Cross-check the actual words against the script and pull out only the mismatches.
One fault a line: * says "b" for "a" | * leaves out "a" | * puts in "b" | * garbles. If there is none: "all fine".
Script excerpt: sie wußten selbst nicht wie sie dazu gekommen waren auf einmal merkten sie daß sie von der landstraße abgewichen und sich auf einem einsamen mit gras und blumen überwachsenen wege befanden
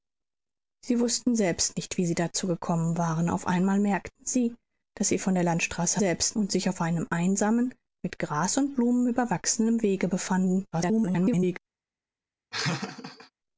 * says "selbst" for "abgewichen"
* garbles